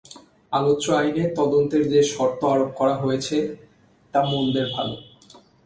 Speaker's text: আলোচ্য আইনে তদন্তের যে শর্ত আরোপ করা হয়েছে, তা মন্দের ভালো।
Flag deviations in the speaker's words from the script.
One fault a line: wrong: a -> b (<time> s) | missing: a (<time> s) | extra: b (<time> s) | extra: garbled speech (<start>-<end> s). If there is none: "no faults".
no faults